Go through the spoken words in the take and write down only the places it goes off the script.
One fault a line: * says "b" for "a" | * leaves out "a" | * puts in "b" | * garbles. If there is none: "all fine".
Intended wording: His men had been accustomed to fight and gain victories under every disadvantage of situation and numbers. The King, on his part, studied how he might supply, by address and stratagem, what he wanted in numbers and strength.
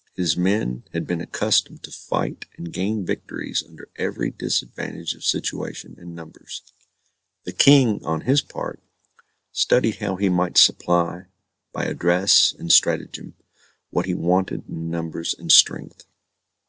all fine